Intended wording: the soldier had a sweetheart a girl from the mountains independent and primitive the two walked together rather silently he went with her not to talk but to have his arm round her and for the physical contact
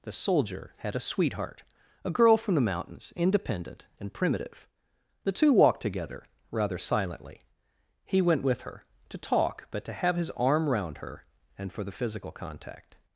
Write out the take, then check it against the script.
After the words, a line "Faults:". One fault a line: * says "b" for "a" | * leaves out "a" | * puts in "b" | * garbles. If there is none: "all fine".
the soldier had a sweetheart a girl from the mountains independent and primitive the two walked together rather silently he went with her to talk but to have his arm round her and for the physical contact
Faults:
* leaves out "not"